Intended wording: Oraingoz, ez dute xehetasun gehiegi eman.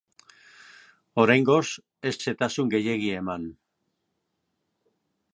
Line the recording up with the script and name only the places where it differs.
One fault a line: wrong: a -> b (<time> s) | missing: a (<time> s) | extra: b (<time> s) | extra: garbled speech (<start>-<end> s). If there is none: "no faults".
missing: dute (2.1 s)